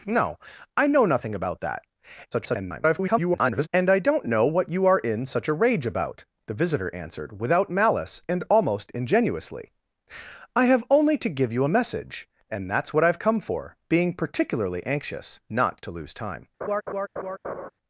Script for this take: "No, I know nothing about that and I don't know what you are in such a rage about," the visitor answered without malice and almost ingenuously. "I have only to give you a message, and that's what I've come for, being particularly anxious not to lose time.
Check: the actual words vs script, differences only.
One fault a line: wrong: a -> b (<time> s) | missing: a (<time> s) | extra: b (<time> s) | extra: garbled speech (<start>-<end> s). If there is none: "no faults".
extra: garbled speech (2.3-3.7 s)